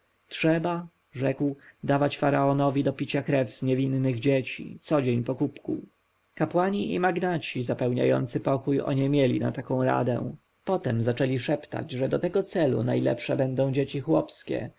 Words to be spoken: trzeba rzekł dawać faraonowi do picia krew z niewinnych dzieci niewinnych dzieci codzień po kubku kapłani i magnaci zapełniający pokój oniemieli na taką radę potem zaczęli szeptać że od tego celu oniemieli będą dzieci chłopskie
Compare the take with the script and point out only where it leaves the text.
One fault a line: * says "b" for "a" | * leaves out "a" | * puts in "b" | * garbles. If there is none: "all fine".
* leaves out "niewinnych dzieci"
* says "do" for "od"
* says "najlepsze" for "oniemieli"